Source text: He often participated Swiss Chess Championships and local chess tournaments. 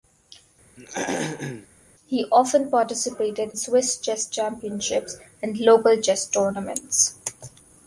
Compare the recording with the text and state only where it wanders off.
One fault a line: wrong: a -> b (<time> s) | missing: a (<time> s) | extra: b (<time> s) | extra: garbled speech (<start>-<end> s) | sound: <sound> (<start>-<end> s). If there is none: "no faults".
sound: throat clearing (0.8-1.7 s)